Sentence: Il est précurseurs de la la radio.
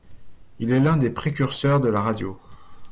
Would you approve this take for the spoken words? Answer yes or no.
no